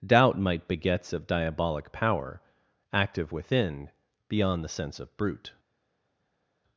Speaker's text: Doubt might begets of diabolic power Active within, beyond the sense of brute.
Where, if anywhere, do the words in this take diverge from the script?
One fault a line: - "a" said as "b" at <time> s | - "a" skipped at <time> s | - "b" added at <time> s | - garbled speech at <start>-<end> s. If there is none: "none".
none